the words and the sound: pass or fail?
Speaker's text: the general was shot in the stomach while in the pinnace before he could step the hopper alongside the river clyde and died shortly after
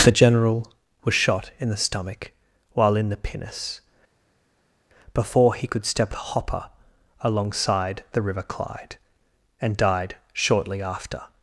pass